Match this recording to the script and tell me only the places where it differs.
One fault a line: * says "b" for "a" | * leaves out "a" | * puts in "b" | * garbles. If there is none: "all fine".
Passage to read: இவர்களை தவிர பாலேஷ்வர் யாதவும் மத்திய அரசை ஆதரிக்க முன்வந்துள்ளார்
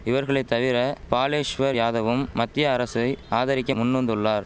all fine